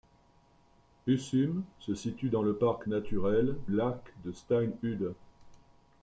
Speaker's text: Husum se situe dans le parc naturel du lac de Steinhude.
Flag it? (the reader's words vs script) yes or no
yes